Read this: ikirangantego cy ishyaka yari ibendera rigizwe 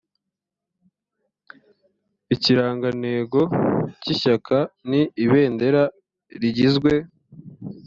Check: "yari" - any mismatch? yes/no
yes